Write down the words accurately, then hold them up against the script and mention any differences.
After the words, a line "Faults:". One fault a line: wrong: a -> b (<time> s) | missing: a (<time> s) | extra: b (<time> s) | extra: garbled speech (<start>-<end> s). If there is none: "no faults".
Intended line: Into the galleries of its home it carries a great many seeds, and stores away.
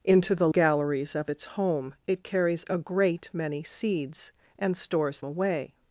Into the galleries of its home it carries a great many seeds, and stores away.
Faults:
no faults